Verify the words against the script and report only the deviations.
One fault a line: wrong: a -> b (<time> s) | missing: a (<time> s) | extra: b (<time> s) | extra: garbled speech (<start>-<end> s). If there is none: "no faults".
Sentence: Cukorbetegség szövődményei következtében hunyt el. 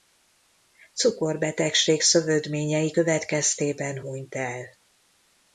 no faults